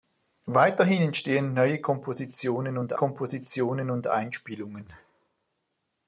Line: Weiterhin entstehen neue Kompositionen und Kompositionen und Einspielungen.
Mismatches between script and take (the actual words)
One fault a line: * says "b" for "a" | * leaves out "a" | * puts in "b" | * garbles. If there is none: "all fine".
all fine